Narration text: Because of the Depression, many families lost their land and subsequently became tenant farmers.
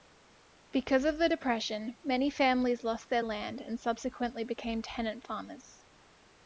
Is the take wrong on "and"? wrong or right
right